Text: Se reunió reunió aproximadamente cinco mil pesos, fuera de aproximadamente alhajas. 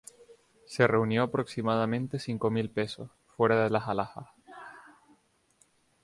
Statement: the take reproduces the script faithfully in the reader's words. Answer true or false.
false